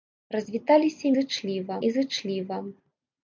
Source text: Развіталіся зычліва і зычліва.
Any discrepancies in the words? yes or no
no